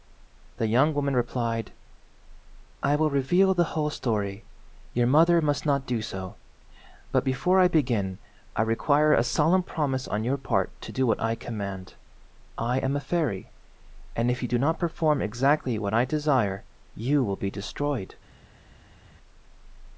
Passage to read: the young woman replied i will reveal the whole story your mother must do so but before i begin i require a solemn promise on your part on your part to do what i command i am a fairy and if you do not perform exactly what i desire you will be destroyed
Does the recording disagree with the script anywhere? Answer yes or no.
yes